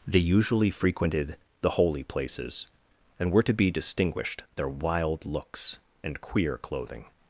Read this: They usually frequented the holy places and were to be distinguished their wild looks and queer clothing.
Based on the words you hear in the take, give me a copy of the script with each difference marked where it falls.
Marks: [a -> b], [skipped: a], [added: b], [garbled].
They usually frequented the holy places and were to be distinguished their wild looks and queer clothing.